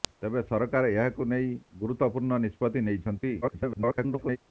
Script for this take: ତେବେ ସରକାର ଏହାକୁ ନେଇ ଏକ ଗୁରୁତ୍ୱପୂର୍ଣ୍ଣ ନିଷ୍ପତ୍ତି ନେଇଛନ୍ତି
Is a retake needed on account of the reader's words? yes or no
yes